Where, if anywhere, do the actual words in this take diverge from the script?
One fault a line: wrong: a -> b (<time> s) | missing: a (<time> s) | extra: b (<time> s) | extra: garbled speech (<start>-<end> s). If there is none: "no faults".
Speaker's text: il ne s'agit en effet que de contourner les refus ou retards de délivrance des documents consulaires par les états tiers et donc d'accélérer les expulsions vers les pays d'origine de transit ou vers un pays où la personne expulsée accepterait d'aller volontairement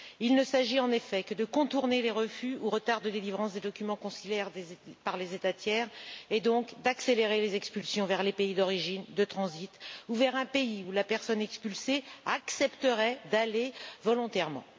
no faults